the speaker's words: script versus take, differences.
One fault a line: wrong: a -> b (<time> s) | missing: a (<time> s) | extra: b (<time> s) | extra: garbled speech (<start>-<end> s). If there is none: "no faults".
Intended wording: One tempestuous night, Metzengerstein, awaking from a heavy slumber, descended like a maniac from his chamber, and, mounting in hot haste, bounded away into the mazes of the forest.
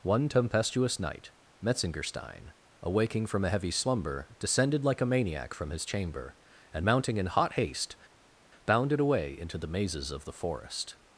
no faults